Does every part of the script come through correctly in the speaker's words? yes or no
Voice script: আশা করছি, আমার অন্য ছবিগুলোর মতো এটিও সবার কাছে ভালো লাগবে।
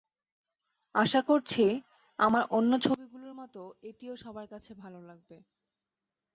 yes